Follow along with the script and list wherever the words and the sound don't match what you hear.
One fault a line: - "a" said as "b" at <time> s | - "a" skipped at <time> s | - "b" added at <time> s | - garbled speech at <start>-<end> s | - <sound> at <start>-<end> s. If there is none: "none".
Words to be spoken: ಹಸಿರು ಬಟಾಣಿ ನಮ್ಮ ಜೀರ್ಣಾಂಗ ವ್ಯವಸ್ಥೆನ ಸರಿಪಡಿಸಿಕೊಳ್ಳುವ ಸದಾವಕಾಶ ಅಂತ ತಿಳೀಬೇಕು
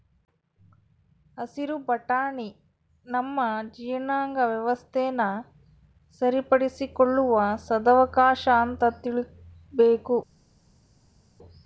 none